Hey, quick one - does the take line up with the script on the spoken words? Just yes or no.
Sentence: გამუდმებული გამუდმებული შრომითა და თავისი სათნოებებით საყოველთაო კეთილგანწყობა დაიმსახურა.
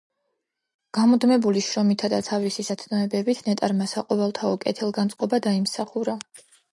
no